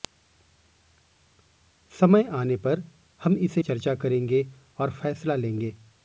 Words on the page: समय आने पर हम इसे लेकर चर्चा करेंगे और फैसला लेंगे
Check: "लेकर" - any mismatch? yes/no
yes